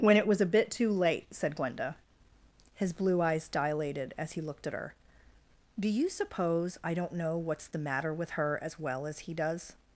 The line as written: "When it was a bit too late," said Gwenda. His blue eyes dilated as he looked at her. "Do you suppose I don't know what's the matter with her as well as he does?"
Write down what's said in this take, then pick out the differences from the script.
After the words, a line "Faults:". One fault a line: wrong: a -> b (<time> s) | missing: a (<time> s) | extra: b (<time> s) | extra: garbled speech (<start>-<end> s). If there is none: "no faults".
"When it was a bit too late," said Gwenda. His blue eyes dilated as he looked at her. "Do you suppose I don't know what's the matter with her as well as he does?"
Faults:
no faults